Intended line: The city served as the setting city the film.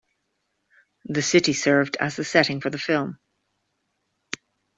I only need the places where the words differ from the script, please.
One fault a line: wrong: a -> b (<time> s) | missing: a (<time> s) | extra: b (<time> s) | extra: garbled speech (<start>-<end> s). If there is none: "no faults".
wrong: city -> for (2.6 s)